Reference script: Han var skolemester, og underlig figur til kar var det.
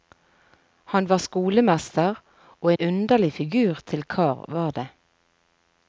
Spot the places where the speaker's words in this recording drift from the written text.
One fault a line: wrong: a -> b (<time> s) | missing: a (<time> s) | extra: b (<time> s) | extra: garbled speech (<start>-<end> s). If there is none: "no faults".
no faults